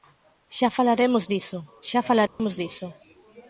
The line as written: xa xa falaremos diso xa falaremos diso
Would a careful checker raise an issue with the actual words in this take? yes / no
yes